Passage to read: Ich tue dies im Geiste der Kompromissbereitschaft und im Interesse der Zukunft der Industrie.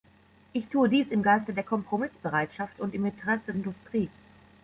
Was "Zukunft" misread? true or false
true